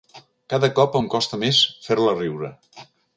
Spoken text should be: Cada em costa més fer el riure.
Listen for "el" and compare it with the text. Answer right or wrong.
wrong